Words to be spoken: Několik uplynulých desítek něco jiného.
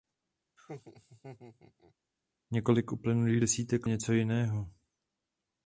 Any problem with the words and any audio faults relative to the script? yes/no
yes